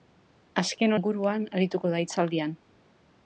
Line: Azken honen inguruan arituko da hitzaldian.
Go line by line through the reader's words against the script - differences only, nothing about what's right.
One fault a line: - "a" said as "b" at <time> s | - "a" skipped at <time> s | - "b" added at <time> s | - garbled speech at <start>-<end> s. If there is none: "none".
- "honen" skipped at 0.9 s